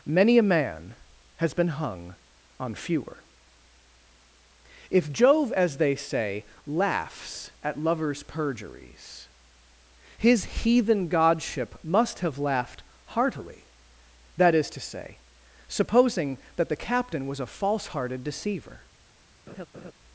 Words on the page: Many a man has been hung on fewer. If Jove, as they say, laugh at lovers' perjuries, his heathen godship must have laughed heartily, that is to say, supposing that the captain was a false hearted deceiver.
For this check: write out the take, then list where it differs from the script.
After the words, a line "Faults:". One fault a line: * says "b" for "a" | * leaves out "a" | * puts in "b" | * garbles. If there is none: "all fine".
Many a man has been hung on fewer. If Jove, as they say, laughs at lovers' perjuries, his heathen godship must have laughed heartily, that is to say, supposing that the captain was a false hearted deceiver.
Faults:
* says "laughs" for "laugh"